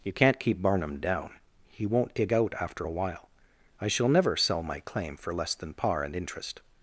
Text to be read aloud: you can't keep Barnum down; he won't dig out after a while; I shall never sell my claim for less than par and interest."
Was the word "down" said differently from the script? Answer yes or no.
no